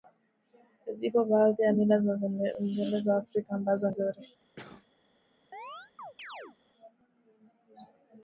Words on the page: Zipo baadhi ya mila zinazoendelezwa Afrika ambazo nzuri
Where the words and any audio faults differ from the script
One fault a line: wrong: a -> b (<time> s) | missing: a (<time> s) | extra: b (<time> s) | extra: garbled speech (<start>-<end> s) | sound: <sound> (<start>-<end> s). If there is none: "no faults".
sound: cough (4.6-4.9 s)
sound: chirp (5.5-6.6 s)